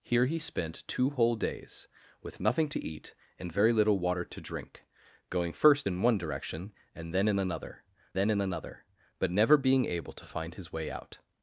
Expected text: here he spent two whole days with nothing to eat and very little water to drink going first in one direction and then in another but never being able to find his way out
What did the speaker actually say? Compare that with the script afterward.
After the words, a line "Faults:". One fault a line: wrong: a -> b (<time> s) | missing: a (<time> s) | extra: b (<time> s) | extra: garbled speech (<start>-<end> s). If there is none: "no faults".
here he spent two whole days with nothing to eat and very little water to drink going first in one direction and then in another then in another but never being able to find his way out
Faults:
extra: then in another (8.1 s)